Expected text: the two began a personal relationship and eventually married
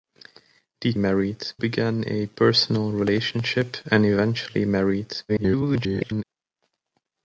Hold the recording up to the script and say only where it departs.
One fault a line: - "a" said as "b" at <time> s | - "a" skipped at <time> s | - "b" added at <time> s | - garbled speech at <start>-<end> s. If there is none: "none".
- "two" said as "married" at 1.0 s
- garbled speech at 5.3-6.2 s